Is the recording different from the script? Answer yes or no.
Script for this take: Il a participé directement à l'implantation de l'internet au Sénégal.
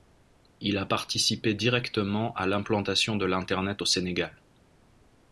no